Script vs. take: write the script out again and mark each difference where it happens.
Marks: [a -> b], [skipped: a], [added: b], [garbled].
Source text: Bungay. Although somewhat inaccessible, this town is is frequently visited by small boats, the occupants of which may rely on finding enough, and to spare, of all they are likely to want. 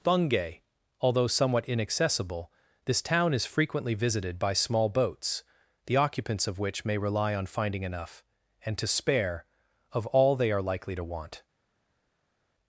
Bungay. Although somewhat inaccessible, this town is [skipped: is] frequently visited by small boats, the occupants of which may rely on finding enough, and to spare, of all they are likely to want.